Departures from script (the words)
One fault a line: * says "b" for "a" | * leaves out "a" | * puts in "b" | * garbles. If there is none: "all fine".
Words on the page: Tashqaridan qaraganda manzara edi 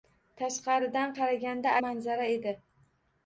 all fine